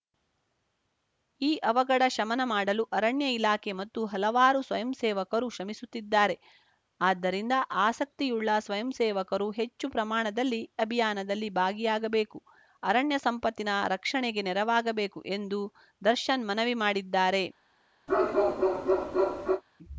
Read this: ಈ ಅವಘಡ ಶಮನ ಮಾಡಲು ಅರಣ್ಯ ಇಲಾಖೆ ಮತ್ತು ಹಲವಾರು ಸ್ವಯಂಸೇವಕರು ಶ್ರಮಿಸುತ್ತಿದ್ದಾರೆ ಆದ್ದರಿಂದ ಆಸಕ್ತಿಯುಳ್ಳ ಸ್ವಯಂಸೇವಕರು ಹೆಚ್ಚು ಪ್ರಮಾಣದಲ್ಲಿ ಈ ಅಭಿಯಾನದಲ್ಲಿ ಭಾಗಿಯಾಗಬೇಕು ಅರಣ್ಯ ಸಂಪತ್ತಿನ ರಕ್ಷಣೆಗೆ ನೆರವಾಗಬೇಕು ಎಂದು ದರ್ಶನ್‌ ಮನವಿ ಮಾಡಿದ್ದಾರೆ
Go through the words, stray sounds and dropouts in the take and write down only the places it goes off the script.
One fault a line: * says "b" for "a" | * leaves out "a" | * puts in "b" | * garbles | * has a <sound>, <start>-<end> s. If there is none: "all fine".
* leaves out "ಈ"
* has a bark, 18.1-19.6 s